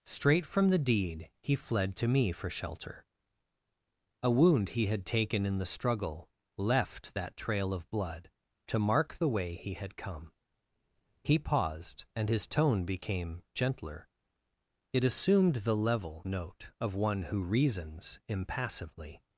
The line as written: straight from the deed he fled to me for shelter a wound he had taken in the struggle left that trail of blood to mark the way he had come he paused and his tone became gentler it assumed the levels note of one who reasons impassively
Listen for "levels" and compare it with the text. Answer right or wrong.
wrong